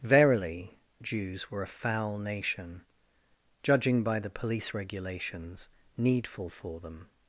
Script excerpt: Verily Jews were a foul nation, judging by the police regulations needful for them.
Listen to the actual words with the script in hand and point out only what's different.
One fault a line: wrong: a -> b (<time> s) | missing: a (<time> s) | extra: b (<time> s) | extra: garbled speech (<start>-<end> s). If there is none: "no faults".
no faults